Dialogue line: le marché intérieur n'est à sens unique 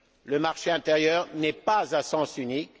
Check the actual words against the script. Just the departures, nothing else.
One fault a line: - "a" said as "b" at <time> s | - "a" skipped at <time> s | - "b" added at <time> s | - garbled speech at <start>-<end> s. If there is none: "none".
- "pas" added at 1.5 s